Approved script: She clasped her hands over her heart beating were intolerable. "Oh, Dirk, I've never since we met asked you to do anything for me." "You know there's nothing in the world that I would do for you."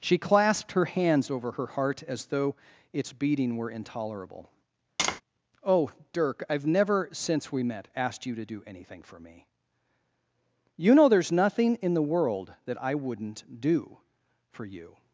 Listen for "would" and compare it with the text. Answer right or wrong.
wrong